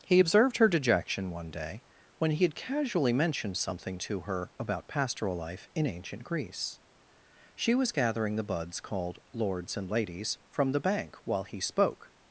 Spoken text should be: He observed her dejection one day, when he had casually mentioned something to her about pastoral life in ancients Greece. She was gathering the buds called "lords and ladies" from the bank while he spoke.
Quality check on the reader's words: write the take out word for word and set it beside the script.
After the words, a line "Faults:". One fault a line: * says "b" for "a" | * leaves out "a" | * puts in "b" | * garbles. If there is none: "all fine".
He observed her dejection one day, when he had casually mentioned something to her about pastoral life in ancient Greece. She was gathering the buds called "lords and ladies" from the bank while he spoke.
Faults:
* says "ancient" for "ancients"